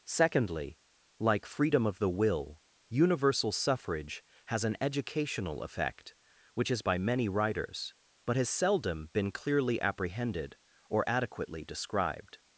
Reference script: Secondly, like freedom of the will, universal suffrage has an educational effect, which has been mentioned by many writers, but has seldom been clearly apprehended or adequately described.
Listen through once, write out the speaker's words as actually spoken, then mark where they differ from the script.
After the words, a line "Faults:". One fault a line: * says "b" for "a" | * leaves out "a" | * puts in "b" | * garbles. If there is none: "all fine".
Secondly, like freedom of the will, universal suffrage has an educational effect, which has by many writers, but has seldom been clearly apprehended or adequately described.
Faults:
* leaves out "been mentioned"